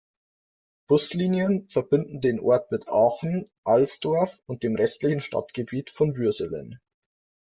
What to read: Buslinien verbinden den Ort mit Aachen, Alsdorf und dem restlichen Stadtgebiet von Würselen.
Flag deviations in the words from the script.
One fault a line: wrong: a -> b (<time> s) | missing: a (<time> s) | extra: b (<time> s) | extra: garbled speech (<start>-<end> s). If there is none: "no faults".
no faults